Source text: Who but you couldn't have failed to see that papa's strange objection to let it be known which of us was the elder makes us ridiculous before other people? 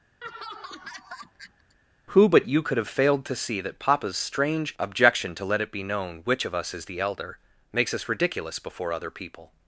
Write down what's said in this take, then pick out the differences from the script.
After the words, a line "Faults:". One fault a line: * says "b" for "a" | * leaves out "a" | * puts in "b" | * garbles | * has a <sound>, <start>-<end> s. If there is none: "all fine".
Who but you could have failed to see that papa's strange objection to let it be known which of us is the elder makes us ridiculous before other people?
Faults:
* has a laugh, 0.2-1.8 s
* says "could" for "couldn't"
* says "is" for "was"